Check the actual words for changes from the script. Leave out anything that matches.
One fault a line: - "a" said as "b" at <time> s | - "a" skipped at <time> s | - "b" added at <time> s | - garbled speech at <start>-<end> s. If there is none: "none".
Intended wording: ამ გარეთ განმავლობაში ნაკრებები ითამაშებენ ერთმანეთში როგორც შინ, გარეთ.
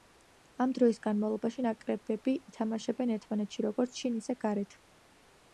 - "გარეთ" said as "დროის" at 0.8 s
- "ისე" added at 4.2 s